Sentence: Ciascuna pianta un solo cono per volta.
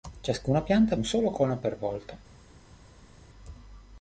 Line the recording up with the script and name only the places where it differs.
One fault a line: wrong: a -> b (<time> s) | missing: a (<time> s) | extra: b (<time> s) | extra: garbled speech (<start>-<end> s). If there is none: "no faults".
no faults